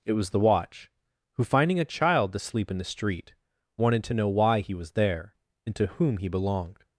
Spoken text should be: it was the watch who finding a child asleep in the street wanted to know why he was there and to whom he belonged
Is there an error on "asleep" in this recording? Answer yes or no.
no